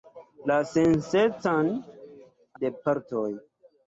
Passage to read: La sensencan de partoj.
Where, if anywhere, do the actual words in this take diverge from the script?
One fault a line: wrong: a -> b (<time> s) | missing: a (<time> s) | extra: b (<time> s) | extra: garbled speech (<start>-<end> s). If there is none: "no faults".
no faults